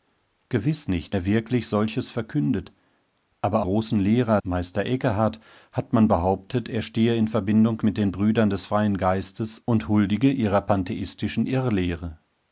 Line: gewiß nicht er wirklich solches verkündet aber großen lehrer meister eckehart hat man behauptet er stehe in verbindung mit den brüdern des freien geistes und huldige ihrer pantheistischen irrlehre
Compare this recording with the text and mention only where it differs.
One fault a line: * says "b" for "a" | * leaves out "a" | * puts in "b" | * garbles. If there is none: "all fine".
all fine